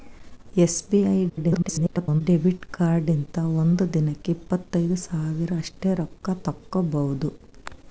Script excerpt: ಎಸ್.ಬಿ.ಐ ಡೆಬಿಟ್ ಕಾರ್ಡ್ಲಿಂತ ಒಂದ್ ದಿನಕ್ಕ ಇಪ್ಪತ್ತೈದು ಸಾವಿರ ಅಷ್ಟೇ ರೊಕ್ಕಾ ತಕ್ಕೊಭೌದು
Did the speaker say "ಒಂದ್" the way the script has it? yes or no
yes